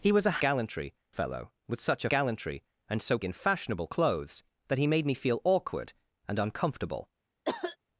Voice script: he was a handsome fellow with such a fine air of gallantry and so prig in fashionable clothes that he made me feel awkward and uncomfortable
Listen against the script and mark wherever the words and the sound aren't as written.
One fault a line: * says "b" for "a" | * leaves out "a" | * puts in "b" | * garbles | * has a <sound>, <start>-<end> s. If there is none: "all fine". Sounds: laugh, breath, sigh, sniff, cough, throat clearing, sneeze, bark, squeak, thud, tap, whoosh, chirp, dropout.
* says "gallantry" for "handsome"
* leaves out "fine air of"
* leaves out "prig"
* has a cough, 7.4-7.8 s